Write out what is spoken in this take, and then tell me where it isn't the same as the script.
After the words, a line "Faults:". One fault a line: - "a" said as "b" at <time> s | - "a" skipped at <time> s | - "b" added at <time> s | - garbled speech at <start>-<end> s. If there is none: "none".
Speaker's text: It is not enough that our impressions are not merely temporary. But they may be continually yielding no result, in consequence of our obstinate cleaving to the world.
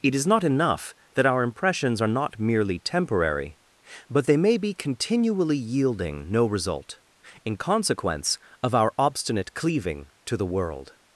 It is not enough that our impressions are not merely temporary. But they may be continually yielding no result, in consequence of our obstinate cleaving to the world.
Faults:
none